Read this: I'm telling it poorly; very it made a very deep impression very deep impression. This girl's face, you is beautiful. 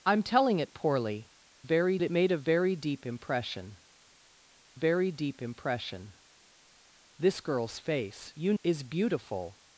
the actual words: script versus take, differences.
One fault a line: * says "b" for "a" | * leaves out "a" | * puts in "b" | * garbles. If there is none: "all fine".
all fine